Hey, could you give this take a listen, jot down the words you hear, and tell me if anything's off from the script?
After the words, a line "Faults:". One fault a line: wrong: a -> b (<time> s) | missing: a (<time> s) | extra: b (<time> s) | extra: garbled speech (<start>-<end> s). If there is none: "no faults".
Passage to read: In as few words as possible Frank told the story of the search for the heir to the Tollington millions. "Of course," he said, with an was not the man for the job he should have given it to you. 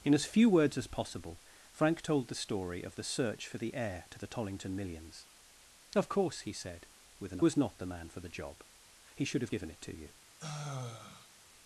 In as few words as possible Frank told the story of the search for the heir to the Tollington millions. "Of course," he said, with an was not the man for the job he should have given it to you.
Faults:
no faults